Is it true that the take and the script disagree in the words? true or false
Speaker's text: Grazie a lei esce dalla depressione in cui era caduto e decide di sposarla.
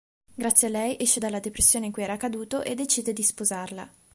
false